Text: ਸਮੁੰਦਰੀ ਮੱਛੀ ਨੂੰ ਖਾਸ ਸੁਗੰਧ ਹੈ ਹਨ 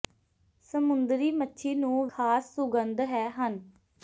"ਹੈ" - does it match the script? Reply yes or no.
yes